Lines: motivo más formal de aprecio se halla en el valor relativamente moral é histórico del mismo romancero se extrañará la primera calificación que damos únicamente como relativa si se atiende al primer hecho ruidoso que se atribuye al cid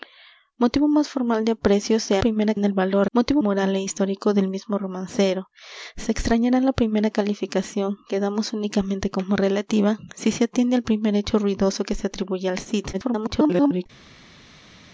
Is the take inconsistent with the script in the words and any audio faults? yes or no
yes